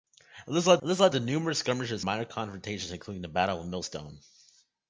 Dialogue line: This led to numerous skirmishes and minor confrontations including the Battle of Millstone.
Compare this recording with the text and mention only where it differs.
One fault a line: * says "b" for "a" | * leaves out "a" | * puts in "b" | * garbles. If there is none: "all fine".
* puts in "this led"
* leaves out "and"